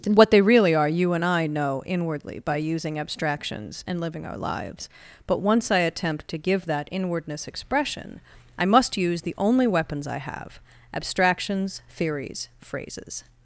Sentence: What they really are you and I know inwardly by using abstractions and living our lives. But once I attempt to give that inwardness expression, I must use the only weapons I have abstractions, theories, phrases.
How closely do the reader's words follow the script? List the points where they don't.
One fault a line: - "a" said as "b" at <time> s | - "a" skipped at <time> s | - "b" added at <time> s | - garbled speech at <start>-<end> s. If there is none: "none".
none